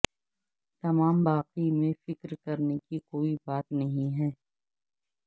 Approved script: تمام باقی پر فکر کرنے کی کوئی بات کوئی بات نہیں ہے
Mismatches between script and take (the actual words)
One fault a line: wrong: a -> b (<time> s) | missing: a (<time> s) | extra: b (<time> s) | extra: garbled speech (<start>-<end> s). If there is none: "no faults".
wrong: پر -> میں (1.7 s)
missing: کوئی بات (3.7 s)